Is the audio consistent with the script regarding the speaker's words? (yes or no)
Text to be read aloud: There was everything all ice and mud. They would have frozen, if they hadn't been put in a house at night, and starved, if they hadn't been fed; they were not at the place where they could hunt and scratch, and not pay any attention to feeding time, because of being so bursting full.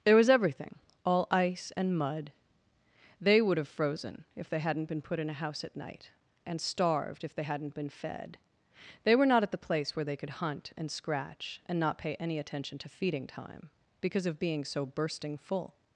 yes